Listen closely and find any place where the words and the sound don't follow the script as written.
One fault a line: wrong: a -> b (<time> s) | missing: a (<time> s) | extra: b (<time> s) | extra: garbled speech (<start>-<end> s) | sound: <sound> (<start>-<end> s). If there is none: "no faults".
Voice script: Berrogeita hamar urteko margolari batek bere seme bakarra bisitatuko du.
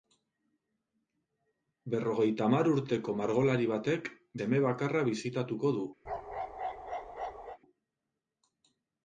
missing: bere (4.1 s)
sound: bark (6.0-7.6 s)